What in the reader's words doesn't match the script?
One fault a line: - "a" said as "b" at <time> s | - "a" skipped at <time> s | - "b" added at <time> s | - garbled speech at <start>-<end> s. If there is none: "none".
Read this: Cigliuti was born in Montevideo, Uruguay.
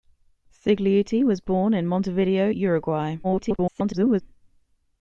- garbled speech at 3.2-4.2 s